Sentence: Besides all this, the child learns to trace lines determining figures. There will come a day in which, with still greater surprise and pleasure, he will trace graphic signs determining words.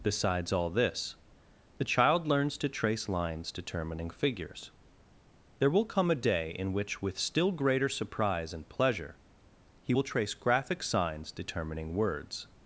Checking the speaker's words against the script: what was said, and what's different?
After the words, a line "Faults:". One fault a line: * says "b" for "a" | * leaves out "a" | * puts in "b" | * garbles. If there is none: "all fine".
Besides all this, the child learns to trace lines determining figures. There will come a day in which, with still greater surprise and pleasure, he will trace graphic signs determining words.
Faults:
all fine